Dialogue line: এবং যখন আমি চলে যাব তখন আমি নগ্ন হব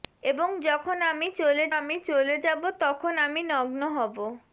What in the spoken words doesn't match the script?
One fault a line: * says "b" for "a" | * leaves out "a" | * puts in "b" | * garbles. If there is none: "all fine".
* puts in "আমি চলে"